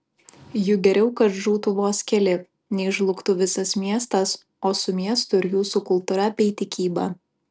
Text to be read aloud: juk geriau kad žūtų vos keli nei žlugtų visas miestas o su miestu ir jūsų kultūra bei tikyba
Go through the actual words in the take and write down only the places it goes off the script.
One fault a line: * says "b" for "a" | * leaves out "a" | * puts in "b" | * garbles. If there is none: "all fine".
all fine